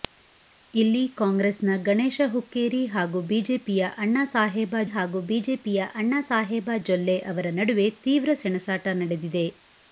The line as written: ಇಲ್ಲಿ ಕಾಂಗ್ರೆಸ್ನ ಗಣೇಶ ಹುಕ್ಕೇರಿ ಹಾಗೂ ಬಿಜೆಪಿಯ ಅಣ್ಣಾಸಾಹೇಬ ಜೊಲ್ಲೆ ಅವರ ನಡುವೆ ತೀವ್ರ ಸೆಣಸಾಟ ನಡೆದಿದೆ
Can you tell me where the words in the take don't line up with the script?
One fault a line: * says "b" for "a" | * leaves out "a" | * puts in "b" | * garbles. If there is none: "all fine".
* puts in "ಹಾಗೂ ಬಿಜೆಪಿಯ ಅಣ್ಣಾಸಾಹೇಬ"